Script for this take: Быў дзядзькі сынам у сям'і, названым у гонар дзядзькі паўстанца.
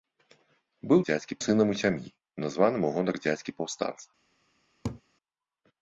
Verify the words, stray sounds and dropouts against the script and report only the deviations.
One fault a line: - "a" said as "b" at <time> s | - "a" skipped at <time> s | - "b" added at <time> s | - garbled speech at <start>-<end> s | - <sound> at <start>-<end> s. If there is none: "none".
- laugh at 4.8-5.0 s